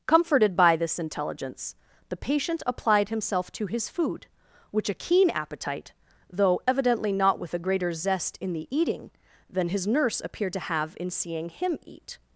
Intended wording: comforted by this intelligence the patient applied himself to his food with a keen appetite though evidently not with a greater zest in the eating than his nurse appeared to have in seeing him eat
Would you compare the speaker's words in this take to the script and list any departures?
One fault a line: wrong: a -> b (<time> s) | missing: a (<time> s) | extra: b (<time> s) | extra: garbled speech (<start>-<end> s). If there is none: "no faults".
wrong: with -> which (4.7 s)